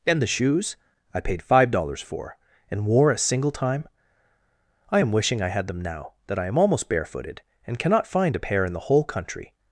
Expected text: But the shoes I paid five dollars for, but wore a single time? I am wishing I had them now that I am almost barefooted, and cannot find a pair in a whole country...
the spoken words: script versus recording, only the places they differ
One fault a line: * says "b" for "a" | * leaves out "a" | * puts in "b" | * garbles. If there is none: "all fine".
* says "And" for "But"
* says "and" for "but"
* says "the" for "a"